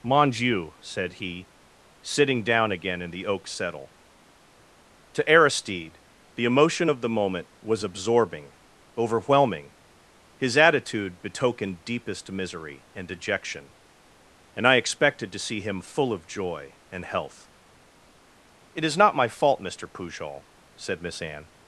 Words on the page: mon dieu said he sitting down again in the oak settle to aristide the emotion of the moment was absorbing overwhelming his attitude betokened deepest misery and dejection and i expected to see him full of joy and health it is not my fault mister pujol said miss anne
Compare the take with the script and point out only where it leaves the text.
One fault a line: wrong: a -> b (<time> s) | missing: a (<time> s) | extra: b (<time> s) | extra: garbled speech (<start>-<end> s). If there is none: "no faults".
no faults